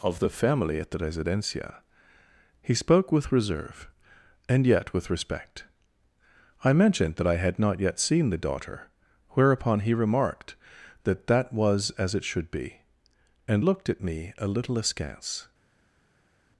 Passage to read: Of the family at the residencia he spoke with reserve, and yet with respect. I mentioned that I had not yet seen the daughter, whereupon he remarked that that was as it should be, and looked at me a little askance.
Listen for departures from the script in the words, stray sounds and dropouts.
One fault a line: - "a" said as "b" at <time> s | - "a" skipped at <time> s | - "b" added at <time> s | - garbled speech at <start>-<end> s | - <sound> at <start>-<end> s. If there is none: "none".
none